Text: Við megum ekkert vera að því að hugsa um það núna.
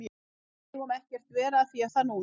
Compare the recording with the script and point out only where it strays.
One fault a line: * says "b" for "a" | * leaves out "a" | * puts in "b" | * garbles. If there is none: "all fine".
* leaves out "að hugsa"